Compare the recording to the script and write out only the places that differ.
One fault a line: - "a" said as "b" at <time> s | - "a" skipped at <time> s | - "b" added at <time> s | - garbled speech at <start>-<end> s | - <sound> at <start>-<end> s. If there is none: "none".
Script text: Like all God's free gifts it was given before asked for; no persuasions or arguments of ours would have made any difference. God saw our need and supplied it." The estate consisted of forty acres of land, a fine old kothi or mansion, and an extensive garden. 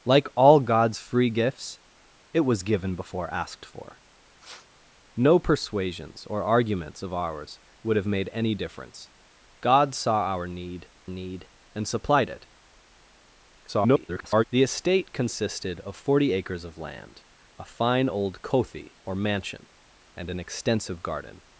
- sniff at 4.4-4.7 s
- "need" added at 11.1 s
- garbled speech at 13.7-14.4 s